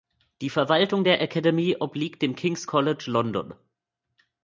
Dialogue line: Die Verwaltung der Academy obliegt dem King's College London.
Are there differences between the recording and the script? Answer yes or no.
no